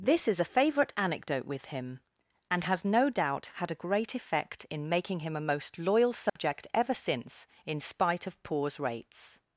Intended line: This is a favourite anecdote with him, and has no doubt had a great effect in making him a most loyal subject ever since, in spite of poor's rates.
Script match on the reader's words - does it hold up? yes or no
yes